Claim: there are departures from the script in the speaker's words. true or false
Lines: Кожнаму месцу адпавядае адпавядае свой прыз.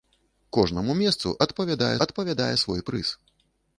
false